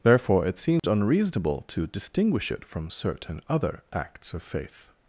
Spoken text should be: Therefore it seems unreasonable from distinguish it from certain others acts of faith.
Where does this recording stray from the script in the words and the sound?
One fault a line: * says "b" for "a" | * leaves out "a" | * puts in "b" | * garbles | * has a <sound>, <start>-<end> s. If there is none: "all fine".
* has a dropout, 0.8-0.8 s
* says "to" for "from"
* says "other" for "others"